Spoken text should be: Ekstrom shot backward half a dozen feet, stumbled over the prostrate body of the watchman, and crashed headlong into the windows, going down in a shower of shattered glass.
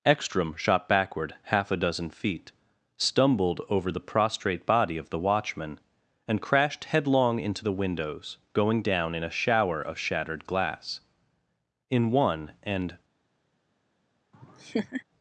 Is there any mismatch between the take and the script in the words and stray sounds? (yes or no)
yes